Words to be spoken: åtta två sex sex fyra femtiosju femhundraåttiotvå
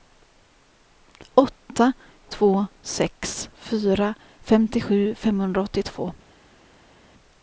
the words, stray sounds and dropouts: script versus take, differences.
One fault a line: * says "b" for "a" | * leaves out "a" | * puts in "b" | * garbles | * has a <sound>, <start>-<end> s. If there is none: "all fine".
* leaves out "sex"